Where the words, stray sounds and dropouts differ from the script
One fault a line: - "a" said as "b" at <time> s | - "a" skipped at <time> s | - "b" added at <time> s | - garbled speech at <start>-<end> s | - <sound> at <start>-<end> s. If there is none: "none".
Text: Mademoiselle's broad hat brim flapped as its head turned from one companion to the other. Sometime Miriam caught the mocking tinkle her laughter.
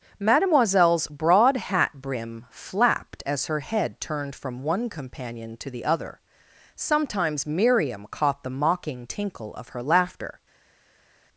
- "its" said as "her" at 3.5 s
- "Sometime" said as "Sometimes" at 6.7 s
- "of" added at 9.5 s